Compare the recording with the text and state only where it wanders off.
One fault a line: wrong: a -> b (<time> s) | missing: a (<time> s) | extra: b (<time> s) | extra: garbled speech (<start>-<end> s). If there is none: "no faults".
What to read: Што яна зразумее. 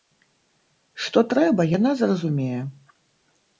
extra: трэба (1.4 s)